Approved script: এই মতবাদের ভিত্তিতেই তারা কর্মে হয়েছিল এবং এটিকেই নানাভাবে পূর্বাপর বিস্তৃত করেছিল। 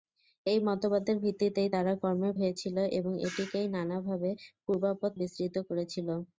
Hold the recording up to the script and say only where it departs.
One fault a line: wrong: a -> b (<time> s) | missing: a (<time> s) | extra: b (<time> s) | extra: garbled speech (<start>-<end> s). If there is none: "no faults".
no faults